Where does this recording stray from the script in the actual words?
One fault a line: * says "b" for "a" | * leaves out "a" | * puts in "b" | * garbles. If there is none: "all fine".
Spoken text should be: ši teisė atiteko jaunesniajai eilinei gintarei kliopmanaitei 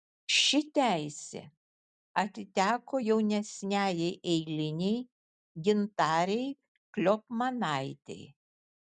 all fine